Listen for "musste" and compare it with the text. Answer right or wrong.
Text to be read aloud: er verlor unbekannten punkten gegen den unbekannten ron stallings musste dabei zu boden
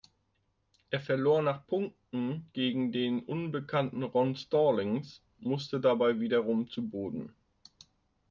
right